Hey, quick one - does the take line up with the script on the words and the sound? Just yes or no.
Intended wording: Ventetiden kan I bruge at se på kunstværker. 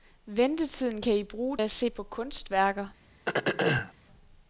no